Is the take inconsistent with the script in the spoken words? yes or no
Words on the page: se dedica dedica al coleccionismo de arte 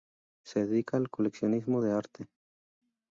yes